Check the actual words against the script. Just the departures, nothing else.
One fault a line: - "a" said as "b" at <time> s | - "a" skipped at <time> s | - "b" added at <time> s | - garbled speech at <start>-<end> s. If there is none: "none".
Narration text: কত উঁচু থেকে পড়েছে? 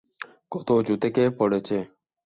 none